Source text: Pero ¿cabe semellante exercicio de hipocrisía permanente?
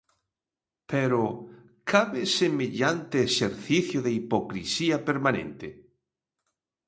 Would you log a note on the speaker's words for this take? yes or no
no